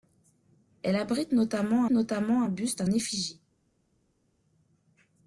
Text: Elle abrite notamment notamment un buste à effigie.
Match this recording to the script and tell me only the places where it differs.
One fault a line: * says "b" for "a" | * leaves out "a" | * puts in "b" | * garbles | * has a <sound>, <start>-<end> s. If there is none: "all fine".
all fine